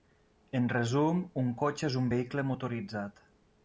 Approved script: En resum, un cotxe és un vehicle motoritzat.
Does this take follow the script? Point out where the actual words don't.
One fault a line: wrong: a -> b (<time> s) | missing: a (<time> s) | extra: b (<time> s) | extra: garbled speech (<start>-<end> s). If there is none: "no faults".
no faults